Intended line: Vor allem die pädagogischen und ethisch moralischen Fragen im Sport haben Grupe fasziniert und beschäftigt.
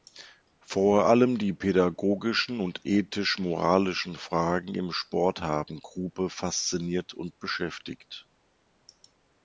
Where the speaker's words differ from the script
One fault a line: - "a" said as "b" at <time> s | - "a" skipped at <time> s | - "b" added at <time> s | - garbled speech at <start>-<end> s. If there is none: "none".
none